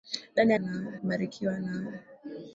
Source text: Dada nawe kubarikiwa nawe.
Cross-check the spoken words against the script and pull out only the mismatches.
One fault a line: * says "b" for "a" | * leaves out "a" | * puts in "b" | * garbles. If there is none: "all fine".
all fine